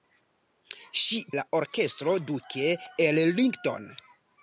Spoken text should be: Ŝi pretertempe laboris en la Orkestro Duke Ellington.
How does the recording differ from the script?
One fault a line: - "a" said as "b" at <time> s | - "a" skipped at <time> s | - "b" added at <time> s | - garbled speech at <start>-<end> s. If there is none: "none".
- "pretertempe laboris en" skipped at 1.2 s